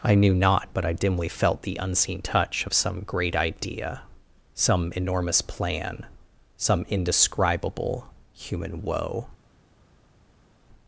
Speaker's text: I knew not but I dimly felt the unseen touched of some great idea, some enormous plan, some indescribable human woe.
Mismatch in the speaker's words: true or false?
true